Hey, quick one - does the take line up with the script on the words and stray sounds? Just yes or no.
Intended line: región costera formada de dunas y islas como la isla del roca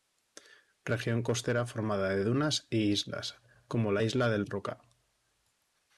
yes